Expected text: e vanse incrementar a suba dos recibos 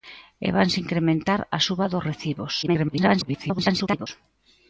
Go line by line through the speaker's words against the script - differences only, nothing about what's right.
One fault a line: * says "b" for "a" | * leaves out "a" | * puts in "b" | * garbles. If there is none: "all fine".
* garbles